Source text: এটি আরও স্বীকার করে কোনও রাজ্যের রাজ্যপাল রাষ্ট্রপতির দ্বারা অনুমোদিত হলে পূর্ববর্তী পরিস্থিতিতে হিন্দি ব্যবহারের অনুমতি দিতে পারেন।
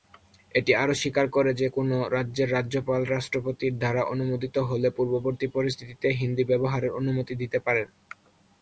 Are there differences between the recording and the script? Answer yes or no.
yes